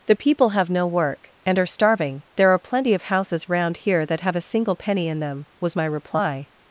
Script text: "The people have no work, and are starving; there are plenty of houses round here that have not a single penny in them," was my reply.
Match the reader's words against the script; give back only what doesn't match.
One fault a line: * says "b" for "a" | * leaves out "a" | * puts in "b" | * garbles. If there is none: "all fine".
* leaves out "not"